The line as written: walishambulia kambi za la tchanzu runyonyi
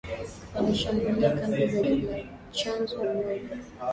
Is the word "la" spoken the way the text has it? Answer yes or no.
yes